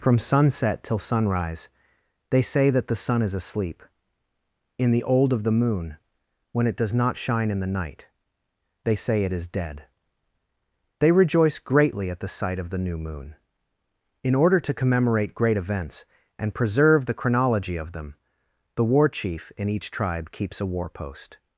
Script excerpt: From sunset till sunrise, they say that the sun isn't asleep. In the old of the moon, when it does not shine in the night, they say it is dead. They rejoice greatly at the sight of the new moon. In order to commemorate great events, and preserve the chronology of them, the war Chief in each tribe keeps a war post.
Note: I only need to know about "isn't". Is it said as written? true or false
false